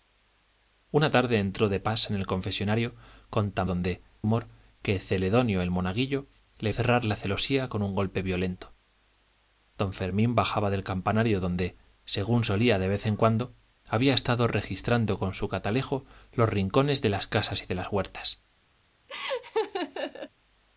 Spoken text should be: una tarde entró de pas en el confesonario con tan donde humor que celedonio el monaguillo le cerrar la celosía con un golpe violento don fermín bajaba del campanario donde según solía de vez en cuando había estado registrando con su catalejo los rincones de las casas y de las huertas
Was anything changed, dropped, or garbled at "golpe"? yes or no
no